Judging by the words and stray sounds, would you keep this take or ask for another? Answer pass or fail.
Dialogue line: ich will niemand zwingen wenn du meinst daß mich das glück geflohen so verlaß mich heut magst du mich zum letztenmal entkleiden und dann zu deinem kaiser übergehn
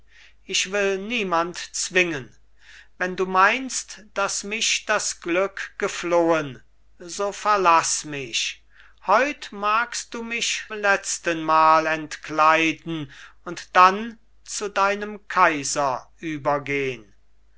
fail